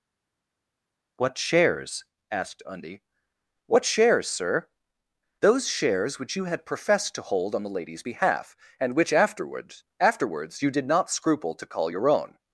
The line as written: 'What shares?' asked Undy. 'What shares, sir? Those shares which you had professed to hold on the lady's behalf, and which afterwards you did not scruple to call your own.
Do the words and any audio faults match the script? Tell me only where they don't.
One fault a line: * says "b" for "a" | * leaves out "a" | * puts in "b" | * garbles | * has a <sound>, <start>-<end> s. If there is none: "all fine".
* puts in "afterwards"